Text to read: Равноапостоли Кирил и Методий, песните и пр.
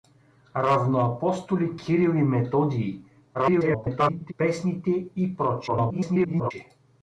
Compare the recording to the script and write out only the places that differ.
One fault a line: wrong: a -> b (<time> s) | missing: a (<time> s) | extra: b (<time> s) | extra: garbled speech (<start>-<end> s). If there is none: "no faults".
extra: garbled speech (3.3-4.3 s)
extra: garbled speech (5.7-6.5 s)